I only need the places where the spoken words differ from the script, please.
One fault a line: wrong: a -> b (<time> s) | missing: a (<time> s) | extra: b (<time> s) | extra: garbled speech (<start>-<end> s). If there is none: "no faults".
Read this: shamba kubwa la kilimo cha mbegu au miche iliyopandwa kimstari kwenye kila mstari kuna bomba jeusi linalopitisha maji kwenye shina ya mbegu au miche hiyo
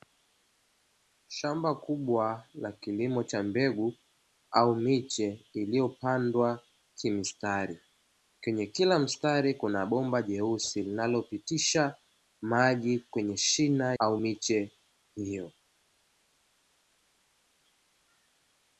missing: ya mbegu (13.9 s)